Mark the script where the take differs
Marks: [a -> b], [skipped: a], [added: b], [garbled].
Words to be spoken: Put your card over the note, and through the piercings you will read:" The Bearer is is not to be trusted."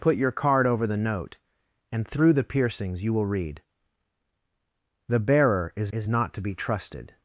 Put your card over the note, and through the piercings you will read:" The Bearer is is not to be trusted."